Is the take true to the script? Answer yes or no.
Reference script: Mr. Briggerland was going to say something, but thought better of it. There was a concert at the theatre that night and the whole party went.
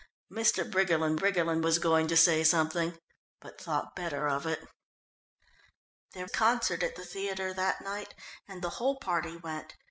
no